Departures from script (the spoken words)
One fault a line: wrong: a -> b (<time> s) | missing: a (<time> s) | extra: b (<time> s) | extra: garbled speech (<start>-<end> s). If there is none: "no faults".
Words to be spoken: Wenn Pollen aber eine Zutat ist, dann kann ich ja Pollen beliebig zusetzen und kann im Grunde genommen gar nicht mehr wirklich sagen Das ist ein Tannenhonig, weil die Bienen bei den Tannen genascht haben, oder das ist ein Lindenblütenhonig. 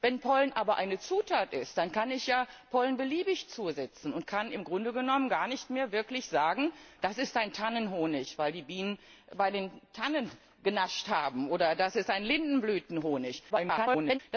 extra: garbled speech (13.5-14.2 s)